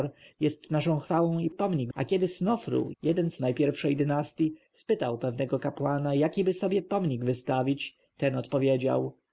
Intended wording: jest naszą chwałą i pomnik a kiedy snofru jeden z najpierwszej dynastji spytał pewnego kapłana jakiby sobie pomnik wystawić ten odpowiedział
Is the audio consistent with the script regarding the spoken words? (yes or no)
yes